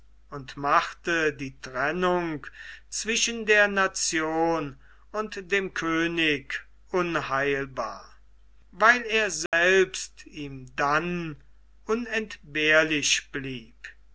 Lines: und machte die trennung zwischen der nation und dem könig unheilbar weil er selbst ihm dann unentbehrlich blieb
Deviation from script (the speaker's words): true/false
false